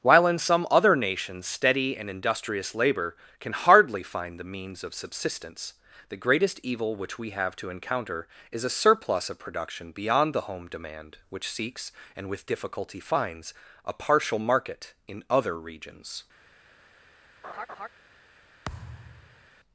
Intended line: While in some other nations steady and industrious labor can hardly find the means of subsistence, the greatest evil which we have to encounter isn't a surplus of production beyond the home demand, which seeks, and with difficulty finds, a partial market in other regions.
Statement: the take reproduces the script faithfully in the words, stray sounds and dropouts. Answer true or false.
false